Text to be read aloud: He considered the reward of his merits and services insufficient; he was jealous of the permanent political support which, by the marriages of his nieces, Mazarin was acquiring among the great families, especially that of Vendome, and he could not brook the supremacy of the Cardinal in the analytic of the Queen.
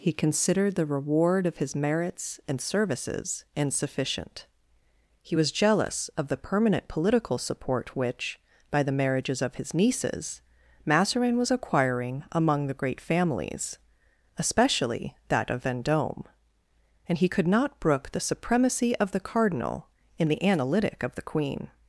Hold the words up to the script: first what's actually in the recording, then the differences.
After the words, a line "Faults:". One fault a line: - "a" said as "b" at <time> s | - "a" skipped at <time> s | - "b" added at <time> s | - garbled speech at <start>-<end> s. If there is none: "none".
He considered the reward of his merits and services insufficient; he was jealous of the permanent political support which, by the marriages of his nieces, Mazarin was acquiring among the great families, especially that of Vendome, and he could not brook the supremacy of the Cardinal in the analytic of the Queen.
Faults:
none